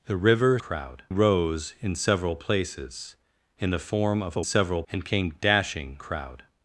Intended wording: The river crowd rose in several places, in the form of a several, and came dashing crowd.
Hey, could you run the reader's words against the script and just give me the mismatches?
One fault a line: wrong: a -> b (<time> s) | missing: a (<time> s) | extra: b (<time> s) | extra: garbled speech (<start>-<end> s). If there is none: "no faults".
no faults